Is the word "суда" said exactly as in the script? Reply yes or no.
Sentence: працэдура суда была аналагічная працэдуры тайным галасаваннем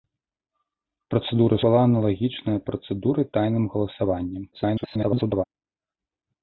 no